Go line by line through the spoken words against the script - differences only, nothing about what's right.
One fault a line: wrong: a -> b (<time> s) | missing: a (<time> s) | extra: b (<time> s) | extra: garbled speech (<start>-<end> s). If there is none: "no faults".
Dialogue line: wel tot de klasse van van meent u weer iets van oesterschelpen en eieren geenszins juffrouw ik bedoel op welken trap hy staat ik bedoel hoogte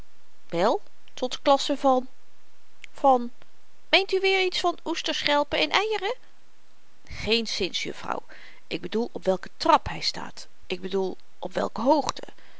extra: op welke (11.4 s)